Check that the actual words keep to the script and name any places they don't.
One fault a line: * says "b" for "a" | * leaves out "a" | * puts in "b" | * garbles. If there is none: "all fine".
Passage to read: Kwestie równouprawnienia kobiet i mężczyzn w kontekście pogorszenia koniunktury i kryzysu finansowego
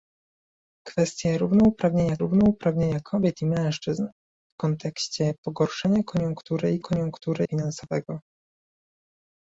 * puts in "równouprawnienia"
* says "koniunktury" for "kryzysu"